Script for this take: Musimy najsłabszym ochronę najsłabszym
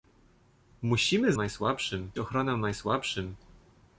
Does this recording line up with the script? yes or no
yes